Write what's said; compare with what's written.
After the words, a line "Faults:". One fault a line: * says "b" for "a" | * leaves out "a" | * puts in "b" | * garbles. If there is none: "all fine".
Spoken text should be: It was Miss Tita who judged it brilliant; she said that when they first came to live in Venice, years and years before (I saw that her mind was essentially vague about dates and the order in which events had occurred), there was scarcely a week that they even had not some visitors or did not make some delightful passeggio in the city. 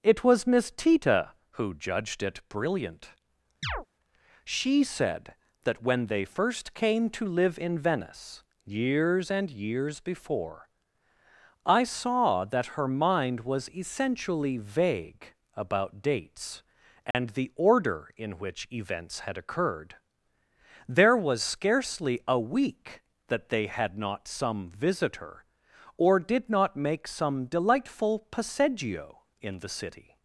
It was Miss Tita who judged it brilliant; she said that when they first came to live in Venice, years and years before (I saw that her mind was essentially vague about dates and the order in which events had occurred), there was scarcely a week that they had not some visitor or did not make some delightful passeggio in the city.
Faults:
* leaves out "even"
* says "visitor" for "visitors"